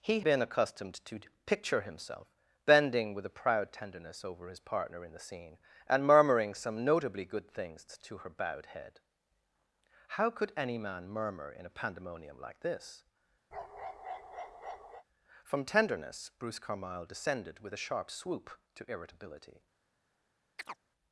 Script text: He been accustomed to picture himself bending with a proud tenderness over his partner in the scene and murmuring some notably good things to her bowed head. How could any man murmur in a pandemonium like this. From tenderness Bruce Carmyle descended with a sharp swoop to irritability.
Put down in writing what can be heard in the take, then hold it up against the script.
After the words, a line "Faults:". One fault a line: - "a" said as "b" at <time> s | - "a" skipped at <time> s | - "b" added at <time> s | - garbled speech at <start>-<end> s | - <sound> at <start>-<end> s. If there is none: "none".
He been accustomed to picture himself bending with a proud tenderness over his partner in the scene and murmuring some notably good things to her bowed head. How could any man murmur in a pandemonium like this. From tenderness Bruce Carmyle descended with a sharp swoop to irritability.
Faults:
- bark at 13.5-15.0 s
- chirp at 20.6-20.8 s